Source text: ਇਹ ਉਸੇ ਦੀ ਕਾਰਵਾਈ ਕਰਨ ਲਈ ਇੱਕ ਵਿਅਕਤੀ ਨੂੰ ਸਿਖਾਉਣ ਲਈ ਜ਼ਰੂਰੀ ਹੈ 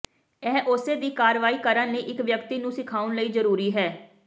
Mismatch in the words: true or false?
false